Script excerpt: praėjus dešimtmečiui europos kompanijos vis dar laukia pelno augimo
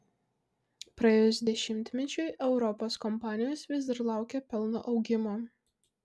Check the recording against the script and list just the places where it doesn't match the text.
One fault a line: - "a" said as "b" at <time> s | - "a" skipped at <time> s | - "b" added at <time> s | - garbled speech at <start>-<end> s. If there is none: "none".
none